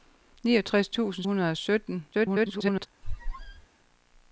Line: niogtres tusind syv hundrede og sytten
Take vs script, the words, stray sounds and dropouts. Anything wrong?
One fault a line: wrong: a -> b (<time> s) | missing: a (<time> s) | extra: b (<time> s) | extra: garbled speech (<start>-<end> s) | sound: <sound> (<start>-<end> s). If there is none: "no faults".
missing: syv (1.2 s)
extra: garbled speech (2.1-2.9 s)
sound: squeak (3.0-3.7 s)